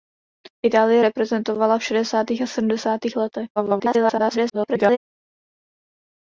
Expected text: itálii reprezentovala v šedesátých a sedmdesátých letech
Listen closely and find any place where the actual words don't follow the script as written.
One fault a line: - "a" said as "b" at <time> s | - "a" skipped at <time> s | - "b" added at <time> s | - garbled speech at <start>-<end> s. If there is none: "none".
- garbled speech at 3.6-5.0 s